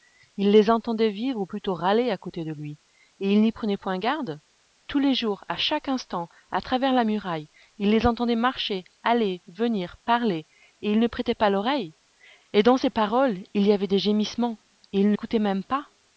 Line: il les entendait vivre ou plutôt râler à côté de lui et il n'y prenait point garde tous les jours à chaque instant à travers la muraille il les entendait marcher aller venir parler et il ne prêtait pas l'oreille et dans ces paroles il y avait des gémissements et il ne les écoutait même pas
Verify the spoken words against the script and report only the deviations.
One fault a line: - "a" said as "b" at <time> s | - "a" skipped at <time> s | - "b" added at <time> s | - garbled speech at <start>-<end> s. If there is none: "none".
- "les" skipped at 15.2 s